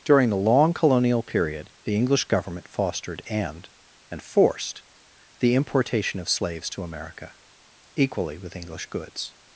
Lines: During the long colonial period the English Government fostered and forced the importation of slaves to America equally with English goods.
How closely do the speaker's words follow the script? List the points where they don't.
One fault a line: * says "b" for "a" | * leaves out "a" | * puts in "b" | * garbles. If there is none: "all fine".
* puts in "and"